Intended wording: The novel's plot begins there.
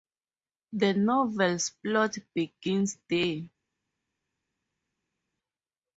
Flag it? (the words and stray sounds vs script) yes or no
no